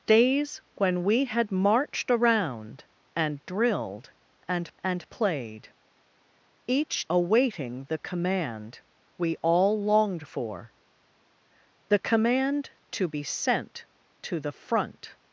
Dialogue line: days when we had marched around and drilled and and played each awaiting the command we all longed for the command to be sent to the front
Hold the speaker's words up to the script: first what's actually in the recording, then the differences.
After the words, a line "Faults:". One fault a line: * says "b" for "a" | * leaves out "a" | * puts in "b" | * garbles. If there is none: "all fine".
days when we had marched around and drilled and and played each awaiting the command we all longed for the command to be sent to the front
Faults:
all fine